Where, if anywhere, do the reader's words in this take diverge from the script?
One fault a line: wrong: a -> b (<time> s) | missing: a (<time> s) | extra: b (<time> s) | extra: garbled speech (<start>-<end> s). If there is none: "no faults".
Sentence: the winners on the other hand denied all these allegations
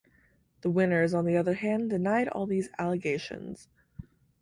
no faults